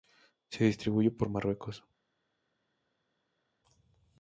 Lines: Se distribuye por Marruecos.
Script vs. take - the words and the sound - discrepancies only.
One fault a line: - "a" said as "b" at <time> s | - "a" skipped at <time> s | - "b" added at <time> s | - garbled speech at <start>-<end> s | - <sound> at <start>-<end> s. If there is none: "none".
none